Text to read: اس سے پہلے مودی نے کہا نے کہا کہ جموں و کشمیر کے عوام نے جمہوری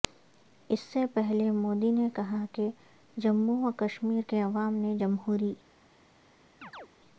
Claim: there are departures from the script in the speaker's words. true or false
true